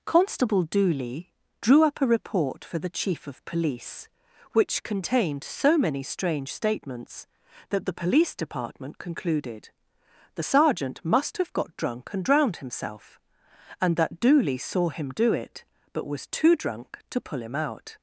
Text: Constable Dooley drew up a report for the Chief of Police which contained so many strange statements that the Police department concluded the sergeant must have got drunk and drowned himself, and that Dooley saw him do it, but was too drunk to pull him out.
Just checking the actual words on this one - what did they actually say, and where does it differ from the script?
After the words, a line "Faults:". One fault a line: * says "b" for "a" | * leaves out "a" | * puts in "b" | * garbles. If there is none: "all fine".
Constable Dooley drew up a report for the Chief of Police which contained so many strange statements that the Police department concluded the sergeant must have got drunk and drowned himself, and that Dooley saw him do it, but was too drunk to pull him out.
Faults:
all fine